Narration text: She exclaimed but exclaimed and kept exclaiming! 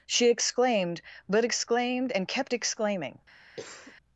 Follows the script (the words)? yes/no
yes